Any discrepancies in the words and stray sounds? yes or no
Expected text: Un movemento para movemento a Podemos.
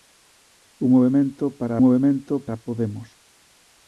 no